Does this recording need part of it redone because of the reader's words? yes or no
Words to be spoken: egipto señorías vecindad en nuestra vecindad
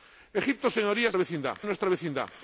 no